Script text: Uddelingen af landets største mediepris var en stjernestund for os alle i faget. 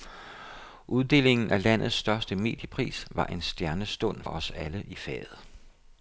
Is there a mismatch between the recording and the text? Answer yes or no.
yes